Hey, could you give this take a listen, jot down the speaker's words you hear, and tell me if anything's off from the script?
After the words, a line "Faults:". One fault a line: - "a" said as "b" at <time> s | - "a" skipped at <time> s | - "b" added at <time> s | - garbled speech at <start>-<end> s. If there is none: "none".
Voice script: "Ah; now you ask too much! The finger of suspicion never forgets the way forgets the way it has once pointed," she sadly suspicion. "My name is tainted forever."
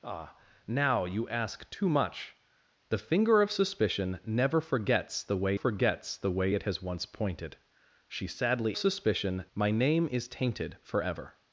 "Ah; now you ask too much! The finger of suspicion never forgets the way forgets the way it has once pointed," she sadly suspicion. "My name is tainted forever."
Faults:
none